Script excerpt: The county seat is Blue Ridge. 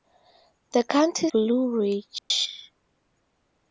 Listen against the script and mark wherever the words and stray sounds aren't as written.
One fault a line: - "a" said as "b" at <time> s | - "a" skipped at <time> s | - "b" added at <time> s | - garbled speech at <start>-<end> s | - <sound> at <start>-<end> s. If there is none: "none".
- "seat is" skipped at 1.3 s
- dropout at 2.2-2.3 s